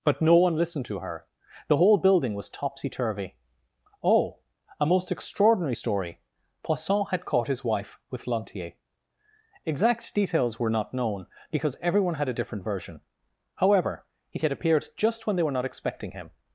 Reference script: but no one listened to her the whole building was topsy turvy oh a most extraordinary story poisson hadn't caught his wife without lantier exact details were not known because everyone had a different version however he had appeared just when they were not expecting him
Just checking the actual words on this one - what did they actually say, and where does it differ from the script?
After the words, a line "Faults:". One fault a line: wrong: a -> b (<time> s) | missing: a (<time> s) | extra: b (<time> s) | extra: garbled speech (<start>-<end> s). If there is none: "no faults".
but no one listened to her the whole building was topsy turvy oh a most extraordinary story poisson had caught his wife with lantier exact details were not known because everyone had a different version however he had appeared just when they were not expecting him
Faults:
wrong: hadn't -> had (7.1 s)
wrong: without -> with (8.1 s)